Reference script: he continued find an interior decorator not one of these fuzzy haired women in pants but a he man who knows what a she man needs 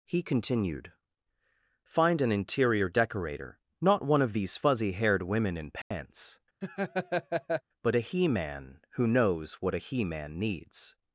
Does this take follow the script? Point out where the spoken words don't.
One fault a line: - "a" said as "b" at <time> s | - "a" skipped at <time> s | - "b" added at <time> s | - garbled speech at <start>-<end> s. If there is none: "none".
- "she" said as "he" at 9.8 s